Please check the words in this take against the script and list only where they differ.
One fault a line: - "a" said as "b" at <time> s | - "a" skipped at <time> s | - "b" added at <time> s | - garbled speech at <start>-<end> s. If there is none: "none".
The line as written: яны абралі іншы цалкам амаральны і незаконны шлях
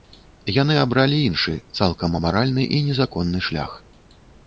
none